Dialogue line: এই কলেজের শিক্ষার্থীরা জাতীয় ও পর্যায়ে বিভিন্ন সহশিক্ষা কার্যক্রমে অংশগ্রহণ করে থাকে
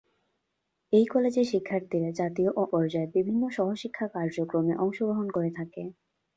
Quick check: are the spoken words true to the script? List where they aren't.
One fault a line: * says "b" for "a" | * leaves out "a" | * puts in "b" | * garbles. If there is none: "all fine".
all fine